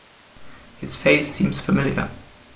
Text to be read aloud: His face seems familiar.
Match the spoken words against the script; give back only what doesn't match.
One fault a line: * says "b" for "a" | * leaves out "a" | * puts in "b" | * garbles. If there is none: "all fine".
all fine